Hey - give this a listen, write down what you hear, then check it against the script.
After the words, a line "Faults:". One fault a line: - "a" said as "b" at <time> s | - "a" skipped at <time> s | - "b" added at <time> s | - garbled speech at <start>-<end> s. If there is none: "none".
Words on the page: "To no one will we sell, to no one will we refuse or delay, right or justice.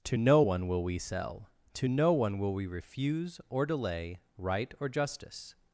"To no one will we sell, to no one will we refuse or delay, right or justice.
Faults:
none